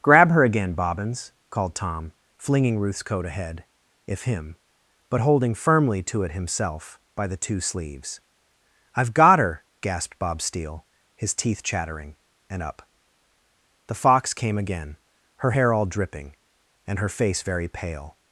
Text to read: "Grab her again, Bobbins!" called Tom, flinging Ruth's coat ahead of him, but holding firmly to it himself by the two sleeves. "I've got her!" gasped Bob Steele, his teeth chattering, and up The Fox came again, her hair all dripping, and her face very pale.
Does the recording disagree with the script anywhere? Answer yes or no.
yes